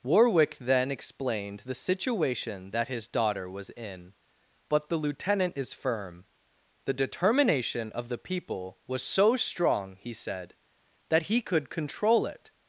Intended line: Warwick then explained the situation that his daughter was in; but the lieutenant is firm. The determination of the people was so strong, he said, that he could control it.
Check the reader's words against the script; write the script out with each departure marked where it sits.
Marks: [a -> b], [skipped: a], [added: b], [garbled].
Warwick then explained the situation that his daughter was in; but the lieutenant is firm. The determination of the people was so strong, he said, that he could control it.